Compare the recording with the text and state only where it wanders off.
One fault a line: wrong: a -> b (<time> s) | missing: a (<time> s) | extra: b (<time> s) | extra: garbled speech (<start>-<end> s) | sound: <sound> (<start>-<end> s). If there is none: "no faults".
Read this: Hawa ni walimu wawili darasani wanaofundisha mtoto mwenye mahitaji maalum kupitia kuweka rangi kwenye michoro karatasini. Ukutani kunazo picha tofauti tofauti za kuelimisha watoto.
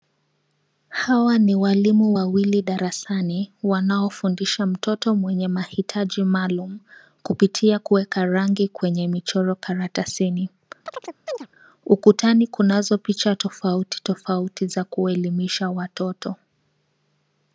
sound: chirp (10.9-11.5 s)